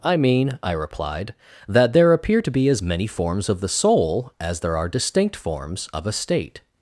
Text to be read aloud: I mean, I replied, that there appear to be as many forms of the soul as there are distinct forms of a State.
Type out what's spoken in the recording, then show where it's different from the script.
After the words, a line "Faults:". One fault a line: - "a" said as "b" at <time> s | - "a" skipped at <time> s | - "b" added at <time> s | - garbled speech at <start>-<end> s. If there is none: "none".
I mean, I replied, that there appear to be as many forms of the soul as there are distinct forms of a State.
Faults:
none